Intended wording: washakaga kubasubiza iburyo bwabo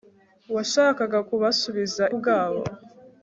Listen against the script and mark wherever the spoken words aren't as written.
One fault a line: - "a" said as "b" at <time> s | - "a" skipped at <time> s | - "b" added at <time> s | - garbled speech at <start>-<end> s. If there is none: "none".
- "iburyo" skipped at 2.0 s